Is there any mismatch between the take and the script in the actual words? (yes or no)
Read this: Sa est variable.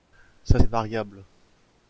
no